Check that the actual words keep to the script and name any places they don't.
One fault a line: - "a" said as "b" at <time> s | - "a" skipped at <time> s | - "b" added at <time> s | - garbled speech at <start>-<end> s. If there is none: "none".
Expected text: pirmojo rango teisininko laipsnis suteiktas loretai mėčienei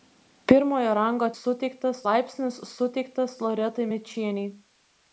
- "teisininko" said as "suteiktas" at 1.4 s